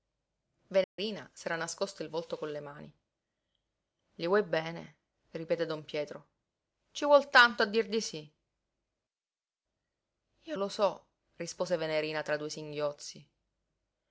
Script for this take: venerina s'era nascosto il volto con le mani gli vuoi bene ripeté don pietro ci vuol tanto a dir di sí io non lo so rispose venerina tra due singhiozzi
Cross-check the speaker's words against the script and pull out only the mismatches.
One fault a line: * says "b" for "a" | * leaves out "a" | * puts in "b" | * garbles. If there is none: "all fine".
* leaves out "non"